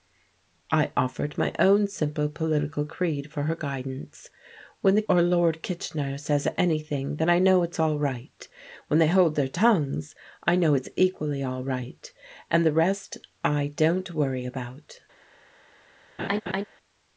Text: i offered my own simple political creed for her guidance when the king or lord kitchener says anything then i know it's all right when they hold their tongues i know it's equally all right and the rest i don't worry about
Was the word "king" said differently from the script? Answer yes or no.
yes